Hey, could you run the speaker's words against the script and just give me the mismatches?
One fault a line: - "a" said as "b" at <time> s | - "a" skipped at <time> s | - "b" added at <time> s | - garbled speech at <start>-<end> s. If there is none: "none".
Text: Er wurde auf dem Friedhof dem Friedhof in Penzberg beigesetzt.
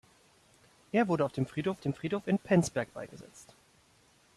none